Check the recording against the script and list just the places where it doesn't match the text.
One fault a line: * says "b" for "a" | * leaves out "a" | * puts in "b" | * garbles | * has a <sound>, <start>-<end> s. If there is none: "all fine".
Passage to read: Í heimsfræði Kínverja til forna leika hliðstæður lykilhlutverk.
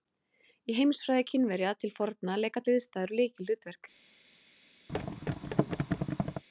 * has a thud, 4.9-6.4 s